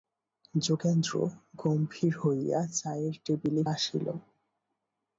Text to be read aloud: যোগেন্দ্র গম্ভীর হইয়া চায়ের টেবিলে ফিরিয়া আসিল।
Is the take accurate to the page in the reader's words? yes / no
no